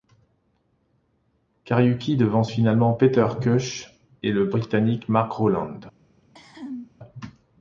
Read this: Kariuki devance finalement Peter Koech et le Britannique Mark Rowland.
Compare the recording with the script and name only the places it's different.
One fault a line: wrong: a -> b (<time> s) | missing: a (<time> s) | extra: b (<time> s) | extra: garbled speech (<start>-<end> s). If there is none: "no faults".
no faults